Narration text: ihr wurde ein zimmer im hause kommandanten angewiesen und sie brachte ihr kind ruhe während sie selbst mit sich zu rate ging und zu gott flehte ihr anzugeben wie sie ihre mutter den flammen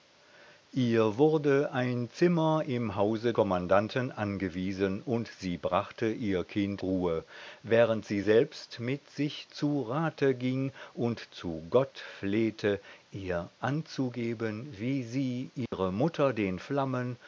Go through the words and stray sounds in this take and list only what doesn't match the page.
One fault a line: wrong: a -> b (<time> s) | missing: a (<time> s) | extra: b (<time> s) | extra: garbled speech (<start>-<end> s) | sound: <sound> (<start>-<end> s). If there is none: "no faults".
sound: dropout (15.7-15.7 s)